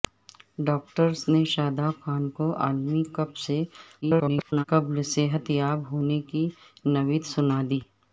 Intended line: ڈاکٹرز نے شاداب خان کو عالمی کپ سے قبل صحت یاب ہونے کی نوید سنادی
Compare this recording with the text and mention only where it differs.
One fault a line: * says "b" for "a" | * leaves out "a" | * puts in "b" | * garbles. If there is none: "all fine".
* garbles